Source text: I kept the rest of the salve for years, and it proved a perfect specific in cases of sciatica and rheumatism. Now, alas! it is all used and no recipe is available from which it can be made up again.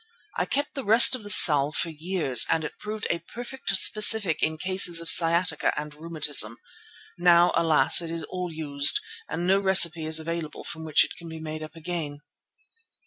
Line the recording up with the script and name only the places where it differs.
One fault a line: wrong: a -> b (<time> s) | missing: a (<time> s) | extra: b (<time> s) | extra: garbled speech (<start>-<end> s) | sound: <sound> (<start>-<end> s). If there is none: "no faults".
no faults